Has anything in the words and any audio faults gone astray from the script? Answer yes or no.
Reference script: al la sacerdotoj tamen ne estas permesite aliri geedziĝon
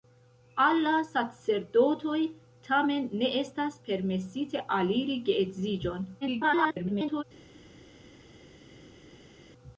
yes